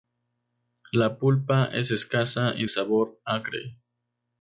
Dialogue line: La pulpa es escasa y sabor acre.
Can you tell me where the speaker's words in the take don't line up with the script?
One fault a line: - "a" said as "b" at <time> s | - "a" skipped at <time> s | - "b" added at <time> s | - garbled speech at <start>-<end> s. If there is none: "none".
none